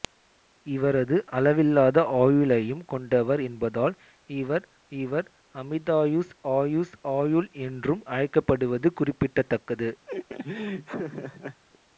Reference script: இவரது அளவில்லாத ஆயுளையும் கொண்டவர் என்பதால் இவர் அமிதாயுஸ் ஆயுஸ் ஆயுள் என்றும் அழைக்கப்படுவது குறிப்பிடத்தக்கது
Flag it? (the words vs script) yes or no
yes